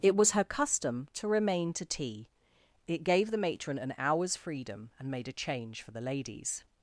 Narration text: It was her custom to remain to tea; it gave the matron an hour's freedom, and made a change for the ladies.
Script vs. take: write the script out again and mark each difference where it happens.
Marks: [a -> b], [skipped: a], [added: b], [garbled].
It was her custom to remain to tea; it gave the matron an hour's freedom, and made a change for the ladies.